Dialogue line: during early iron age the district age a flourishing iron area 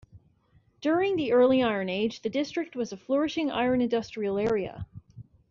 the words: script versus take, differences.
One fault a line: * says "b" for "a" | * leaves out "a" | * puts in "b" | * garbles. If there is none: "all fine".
* puts in "the"
* says "was" for "age"
* puts in "industrial"